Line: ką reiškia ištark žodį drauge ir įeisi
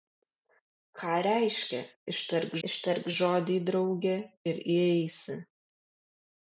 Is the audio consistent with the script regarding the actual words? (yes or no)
no